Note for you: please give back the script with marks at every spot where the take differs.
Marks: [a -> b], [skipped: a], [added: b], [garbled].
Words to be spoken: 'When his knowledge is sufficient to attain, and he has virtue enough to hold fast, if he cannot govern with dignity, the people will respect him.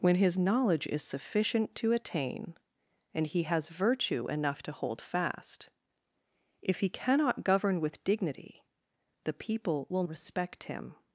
'When his knowledge is sufficient to attain, and he has virtue enough to hold fast, if he cannot govern with dignity, the people will respect him.